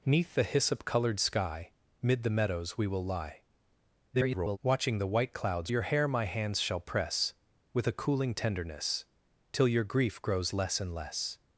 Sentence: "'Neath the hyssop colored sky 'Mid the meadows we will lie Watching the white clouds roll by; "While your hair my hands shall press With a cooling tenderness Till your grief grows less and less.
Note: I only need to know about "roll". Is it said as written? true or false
false